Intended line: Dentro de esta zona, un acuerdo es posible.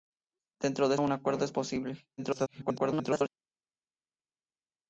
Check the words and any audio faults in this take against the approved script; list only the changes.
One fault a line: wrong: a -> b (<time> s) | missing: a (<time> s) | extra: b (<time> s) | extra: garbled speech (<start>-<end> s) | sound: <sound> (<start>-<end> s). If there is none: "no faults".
missing: esta zona (0.9 s)
extra: garbled speech (2.2-3.3 s)